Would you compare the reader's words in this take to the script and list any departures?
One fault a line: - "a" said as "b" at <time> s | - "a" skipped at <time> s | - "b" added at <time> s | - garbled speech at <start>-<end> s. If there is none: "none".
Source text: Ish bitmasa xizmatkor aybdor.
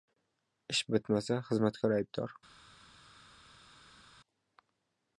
none